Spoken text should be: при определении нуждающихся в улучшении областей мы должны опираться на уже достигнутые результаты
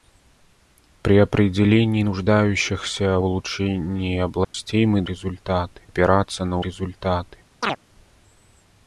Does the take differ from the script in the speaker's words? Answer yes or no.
yes